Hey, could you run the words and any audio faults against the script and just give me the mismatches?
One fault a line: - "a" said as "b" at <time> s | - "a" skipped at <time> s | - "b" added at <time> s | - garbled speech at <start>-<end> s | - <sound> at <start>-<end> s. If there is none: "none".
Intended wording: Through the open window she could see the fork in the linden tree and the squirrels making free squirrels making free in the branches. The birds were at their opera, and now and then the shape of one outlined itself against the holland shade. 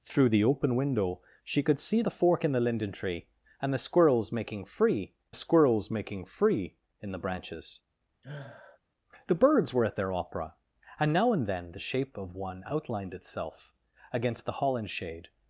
- sniff at 8.2-8.8 s